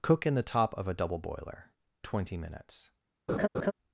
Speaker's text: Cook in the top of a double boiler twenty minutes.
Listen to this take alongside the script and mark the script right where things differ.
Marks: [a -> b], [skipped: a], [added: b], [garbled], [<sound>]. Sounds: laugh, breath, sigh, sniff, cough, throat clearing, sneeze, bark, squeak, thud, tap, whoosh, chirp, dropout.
Cook in the top of a double boiler twenty minutes. [laugh]